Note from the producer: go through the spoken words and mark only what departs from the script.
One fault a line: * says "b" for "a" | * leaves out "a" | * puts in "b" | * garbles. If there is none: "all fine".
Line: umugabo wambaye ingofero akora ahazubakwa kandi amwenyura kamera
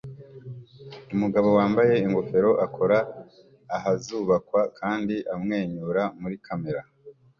* puts in "muri"